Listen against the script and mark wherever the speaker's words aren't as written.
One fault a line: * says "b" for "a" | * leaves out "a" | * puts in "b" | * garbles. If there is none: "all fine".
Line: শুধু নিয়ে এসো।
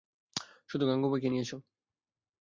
* puts in "গাঙুবাইকে"